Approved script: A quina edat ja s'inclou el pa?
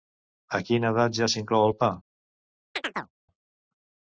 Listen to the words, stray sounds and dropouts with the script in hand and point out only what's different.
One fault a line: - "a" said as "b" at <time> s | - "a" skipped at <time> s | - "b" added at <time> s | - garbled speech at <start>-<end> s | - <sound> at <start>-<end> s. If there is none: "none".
- chirp at 2.7-3.1 s